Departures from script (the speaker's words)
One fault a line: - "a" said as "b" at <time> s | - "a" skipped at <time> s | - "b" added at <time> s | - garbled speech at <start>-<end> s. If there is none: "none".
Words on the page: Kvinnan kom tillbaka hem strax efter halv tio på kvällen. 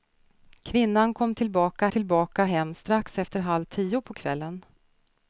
- "tillbaka" added at 1.9 s